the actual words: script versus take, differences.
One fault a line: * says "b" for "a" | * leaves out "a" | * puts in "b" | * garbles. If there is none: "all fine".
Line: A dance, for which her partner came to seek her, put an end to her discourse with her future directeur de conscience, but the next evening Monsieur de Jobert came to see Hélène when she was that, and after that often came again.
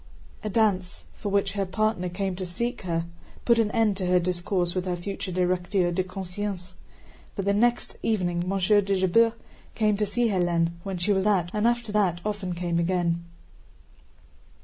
all fine